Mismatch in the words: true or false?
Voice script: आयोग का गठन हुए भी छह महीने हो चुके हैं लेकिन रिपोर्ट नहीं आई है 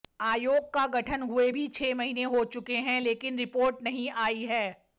false